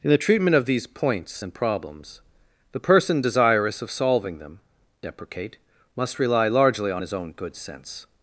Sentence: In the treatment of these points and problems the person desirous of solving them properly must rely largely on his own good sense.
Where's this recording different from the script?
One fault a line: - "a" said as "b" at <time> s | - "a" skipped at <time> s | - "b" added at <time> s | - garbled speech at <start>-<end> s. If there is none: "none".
- "properly" said as "deprecate" at 5.0 s